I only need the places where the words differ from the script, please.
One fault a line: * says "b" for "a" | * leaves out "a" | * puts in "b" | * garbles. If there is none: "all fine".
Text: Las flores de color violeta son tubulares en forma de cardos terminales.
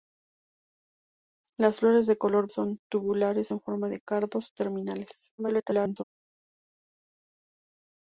* leaves out "violeta"
* garbles